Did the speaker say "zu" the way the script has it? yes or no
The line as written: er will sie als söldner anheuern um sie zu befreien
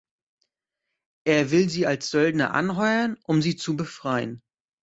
yes